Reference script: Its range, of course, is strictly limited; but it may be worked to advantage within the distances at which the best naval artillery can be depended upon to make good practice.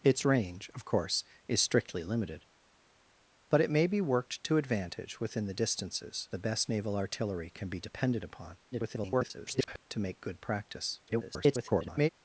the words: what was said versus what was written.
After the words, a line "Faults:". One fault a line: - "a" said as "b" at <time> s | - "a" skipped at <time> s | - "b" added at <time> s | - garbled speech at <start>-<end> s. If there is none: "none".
Its range, of course, is strictly limited; but it may be worked to advantage within the distances the best naval artillery can be depended upon [garbled] to make good practice. [garbled]
Faults:
- "at which" skipped at 6.3 s
- garbled speech at 8.7-9.8 s
- garbled speech at 11.1-12.1 s